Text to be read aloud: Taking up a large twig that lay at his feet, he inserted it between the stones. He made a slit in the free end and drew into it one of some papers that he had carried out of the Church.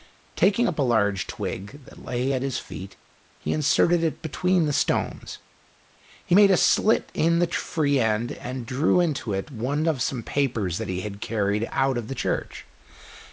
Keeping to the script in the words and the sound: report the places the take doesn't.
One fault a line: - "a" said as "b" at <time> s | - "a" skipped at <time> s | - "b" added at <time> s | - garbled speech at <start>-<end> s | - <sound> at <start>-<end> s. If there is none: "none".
none